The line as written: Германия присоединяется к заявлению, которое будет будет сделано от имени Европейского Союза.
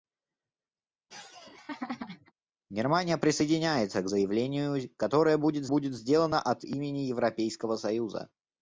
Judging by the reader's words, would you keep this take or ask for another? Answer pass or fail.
pass